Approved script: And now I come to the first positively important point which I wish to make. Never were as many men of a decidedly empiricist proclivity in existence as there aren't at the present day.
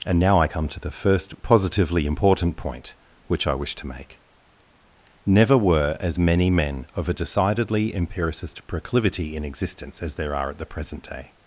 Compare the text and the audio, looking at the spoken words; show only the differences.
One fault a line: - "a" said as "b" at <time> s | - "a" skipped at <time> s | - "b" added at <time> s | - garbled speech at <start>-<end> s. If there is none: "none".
- "aren't" said as "are" at 10.3 s